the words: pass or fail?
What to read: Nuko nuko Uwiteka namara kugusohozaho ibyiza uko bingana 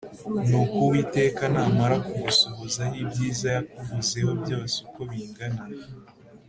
fail